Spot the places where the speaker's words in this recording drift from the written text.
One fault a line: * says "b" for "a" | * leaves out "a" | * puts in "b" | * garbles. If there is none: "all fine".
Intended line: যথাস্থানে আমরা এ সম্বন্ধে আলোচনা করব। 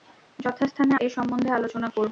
* leaves out "আমরা"